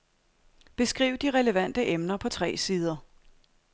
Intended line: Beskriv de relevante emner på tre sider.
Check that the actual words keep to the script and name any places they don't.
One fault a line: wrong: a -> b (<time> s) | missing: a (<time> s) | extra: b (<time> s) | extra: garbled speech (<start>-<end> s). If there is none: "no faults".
no faults